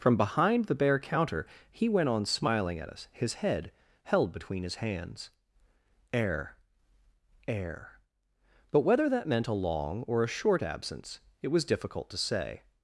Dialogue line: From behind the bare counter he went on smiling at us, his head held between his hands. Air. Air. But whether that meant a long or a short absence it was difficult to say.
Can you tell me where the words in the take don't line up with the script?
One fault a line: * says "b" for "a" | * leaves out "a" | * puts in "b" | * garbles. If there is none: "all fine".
all fine